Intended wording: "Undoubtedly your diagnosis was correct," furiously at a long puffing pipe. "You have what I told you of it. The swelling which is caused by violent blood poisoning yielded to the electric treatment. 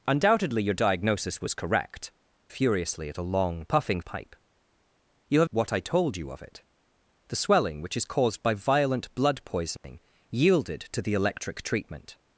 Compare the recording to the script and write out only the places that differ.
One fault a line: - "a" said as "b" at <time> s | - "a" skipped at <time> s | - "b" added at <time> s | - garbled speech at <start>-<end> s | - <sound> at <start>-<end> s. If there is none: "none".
- dropout at 9.8-9.8 s